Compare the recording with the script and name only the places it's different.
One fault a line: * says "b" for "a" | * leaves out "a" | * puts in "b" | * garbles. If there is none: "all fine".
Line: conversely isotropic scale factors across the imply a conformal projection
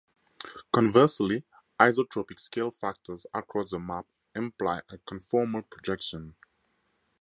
* puts in "map"